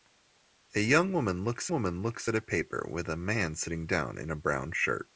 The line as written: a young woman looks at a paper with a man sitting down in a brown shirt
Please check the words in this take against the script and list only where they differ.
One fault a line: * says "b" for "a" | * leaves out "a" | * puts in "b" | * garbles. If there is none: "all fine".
* puts in "woman looks"